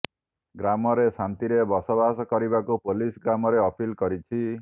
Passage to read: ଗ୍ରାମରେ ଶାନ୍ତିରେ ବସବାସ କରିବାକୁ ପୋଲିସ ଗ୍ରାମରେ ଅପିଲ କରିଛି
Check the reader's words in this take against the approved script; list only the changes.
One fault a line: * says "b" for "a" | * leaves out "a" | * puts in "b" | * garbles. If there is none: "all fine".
all fine